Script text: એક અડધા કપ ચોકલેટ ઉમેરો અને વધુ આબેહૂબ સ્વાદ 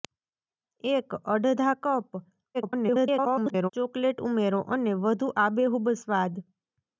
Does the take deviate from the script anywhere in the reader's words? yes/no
yes